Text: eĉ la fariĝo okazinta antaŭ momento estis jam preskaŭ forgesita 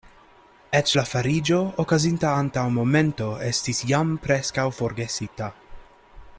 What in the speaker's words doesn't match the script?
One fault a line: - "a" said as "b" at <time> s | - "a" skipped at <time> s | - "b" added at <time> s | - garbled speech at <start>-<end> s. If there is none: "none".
none